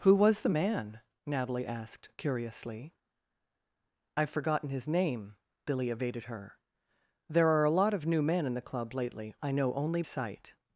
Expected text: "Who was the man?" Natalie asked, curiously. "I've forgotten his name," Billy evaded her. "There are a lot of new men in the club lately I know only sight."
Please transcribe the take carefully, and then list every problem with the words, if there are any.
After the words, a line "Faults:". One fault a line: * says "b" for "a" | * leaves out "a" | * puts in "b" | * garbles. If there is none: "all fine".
"Who was the man?" Natalie asked, curiously. "I've forgotten his name," Billy evaded her. "There are a lot of new men in the club lately I know only sight."
Faults:
all fine